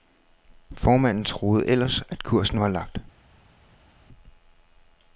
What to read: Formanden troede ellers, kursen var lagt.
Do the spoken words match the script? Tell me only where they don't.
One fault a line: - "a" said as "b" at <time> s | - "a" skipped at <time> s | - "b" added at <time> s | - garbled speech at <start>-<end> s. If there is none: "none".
- "at" added at 2.1 s